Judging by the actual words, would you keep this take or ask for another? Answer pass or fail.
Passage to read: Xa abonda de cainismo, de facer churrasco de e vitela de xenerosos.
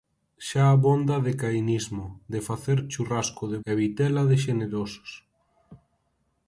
pass